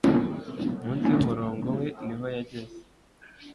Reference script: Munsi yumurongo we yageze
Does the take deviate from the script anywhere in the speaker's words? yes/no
yes